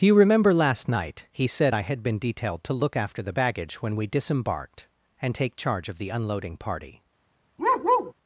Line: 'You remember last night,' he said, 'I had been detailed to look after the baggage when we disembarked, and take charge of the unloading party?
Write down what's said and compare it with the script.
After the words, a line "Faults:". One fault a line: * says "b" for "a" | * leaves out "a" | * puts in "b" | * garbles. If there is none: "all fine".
do 'You remember last night,' he said, 'I had been detailed to look after the baggage when we disembarked, and take charge of the unloading party?
Faults:
* puts in "do"